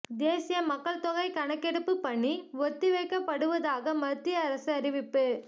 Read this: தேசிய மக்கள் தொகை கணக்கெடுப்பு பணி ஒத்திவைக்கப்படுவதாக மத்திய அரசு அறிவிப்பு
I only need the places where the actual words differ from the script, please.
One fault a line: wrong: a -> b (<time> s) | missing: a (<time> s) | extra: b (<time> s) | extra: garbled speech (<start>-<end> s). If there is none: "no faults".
no faults